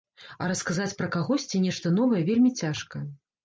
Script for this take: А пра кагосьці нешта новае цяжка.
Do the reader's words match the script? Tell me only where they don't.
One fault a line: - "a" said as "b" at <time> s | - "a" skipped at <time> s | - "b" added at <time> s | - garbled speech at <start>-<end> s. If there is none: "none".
- "расказаць" added at 0.5 s
- "вельмі" added at 2.3 s